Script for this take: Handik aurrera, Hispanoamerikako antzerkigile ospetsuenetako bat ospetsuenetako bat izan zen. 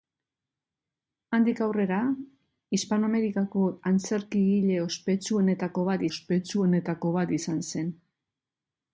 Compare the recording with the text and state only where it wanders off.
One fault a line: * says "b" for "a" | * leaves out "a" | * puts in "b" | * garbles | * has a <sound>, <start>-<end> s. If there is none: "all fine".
all fine